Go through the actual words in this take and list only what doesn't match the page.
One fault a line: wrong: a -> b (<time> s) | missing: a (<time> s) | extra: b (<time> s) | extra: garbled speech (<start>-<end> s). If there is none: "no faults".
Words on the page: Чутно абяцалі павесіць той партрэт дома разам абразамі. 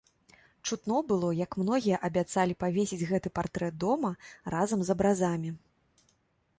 extra: было як многія (1.1 s)
wrong: той -> гэты (3.1 s)
extra: з (4.9 s)